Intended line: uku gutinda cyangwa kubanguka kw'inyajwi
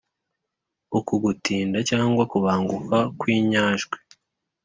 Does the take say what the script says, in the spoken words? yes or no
yes